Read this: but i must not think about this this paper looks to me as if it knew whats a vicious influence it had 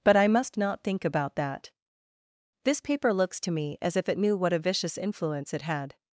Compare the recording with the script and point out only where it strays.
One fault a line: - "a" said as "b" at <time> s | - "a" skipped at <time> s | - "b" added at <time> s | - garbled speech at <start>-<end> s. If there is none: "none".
- "this" said as "that" at 1.4 s
- "whats" said as "what" at 4.4 s